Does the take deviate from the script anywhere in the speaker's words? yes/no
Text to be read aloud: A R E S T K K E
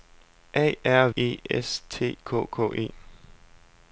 no